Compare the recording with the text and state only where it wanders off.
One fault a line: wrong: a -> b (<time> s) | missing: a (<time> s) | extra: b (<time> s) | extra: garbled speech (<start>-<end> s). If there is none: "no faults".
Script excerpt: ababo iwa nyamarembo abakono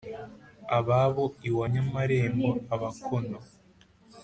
no faults